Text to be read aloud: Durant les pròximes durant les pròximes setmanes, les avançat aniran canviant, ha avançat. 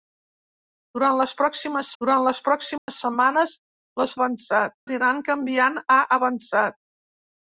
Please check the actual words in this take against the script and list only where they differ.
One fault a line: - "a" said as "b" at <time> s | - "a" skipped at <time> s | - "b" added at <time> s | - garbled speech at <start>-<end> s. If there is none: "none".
none